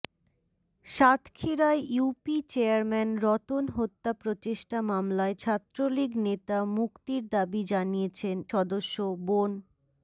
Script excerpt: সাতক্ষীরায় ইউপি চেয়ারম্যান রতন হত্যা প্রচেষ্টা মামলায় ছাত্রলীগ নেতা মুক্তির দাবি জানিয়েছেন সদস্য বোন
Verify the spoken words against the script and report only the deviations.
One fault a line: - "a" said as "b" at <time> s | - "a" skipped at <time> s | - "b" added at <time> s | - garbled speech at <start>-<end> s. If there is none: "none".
none